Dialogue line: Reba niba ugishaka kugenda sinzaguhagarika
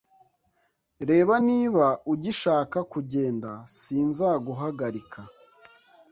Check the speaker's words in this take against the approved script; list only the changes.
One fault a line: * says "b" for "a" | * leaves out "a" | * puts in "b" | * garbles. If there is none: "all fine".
all fine